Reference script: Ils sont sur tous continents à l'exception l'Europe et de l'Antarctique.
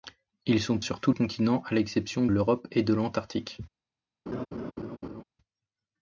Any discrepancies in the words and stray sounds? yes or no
yes